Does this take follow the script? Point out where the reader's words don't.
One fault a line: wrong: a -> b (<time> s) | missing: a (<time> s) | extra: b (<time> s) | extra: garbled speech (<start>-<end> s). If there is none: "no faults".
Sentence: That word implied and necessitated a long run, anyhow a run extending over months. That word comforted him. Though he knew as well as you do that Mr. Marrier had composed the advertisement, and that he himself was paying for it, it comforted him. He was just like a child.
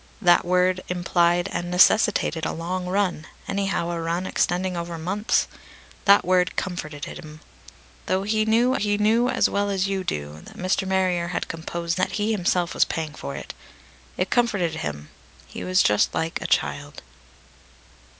extra: he knew (8.7 s)
missing: the advertisement and (12.0 s)